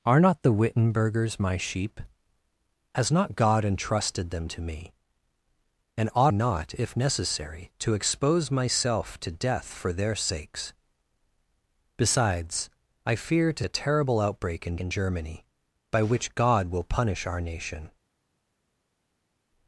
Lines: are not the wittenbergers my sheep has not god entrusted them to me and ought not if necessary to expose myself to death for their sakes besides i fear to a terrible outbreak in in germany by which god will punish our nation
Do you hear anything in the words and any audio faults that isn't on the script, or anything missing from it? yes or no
no